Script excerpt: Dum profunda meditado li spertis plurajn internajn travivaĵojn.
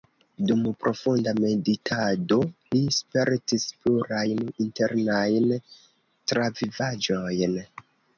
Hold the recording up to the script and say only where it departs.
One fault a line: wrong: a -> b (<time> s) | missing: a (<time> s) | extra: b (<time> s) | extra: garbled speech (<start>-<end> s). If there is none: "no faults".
no faults